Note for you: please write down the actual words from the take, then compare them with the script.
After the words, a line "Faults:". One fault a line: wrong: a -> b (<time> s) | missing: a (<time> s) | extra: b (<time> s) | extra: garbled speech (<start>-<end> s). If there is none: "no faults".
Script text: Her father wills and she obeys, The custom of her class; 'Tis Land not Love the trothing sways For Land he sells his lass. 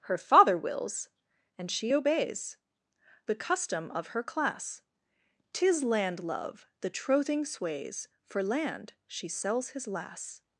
Her father wills and she obeys, The custom of her class; 'Tis Land Love the trothing sways For Land she sells his lass.
Faults:
missing: not (6.2 s)
wrong: he -> she (9.1 s)